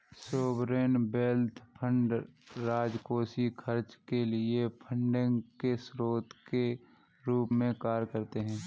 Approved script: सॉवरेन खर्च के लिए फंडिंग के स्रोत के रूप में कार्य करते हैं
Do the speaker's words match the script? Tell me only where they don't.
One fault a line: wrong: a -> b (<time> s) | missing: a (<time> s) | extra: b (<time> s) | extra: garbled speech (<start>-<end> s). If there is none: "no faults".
extra: वेल्थ फंड राजकोषीय (1.1 s)